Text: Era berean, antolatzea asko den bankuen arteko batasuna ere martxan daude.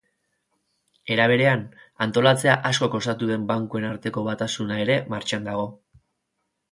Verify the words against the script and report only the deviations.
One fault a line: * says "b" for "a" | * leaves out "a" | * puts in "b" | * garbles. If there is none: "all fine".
* puts in "kostatu"
* says "dago" for "daude"